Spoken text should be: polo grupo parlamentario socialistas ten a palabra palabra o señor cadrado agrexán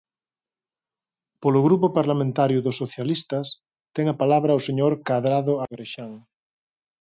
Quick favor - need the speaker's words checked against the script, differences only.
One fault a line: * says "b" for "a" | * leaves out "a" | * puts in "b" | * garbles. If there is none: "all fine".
* puts in "dos"
* leaves out "palabra"